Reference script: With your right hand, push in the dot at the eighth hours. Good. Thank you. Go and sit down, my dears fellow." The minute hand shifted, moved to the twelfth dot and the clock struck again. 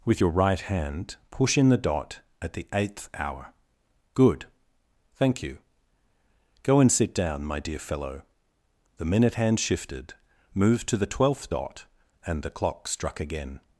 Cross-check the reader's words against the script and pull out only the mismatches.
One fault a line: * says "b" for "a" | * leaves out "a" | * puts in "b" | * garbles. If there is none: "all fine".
* says "hour" for "hours"
* says "dear" for "dears"